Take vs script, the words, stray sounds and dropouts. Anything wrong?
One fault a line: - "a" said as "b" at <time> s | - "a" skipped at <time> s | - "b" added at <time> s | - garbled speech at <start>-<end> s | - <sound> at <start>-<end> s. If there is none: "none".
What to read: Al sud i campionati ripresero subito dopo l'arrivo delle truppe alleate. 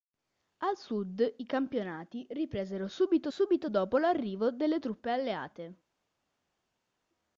- "subito" added at 3.3 s